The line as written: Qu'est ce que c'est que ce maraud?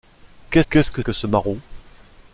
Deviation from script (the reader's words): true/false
true